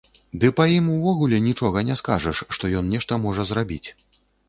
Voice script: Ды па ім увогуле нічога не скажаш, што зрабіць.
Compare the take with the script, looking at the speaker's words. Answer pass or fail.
fail